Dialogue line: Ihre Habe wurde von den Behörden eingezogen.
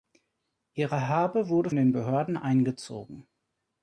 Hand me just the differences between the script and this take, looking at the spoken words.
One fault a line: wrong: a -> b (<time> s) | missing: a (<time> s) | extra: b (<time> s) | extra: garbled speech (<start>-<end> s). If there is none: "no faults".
missing: von (1.7 s)